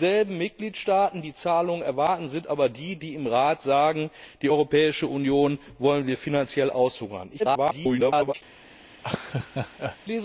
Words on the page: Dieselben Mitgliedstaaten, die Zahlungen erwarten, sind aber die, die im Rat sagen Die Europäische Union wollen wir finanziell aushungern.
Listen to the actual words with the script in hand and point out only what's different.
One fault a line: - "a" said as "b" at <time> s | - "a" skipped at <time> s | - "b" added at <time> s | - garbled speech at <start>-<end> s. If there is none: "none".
- garbled speech at 7.4-8.3 s